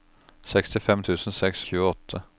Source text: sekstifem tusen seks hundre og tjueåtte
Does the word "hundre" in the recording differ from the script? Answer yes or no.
yes